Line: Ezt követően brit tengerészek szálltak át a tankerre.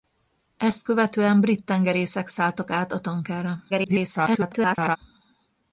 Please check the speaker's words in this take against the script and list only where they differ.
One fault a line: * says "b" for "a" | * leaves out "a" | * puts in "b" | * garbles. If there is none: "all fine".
* garbles